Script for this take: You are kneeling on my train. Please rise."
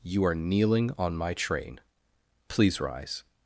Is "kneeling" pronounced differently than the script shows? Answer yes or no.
no